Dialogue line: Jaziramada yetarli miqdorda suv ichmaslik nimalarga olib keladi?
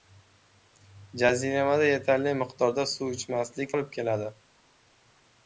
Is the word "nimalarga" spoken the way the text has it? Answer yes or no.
no